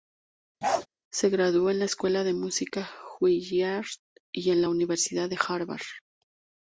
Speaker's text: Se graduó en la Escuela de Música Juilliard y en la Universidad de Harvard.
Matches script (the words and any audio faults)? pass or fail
fail